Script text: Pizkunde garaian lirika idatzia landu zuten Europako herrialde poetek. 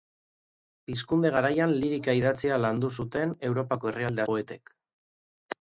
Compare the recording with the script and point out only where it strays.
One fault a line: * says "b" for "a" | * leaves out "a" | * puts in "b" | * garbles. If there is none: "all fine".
all fine